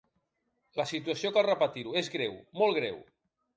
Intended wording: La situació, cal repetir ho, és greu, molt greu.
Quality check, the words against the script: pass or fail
pass